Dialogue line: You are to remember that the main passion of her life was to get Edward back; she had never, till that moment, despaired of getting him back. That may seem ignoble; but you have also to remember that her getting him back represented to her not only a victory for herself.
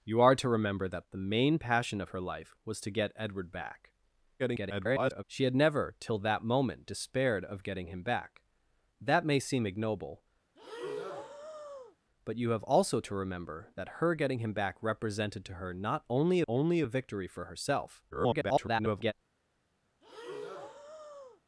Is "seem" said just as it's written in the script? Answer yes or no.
yes